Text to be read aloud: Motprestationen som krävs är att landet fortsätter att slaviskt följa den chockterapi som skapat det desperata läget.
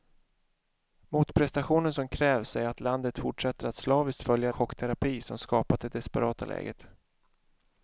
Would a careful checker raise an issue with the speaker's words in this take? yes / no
yes